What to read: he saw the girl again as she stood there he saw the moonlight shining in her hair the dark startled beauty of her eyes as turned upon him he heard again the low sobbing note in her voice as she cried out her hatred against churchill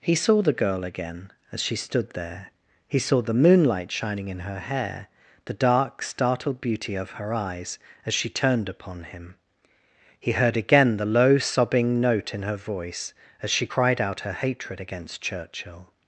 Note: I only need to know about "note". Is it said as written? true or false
true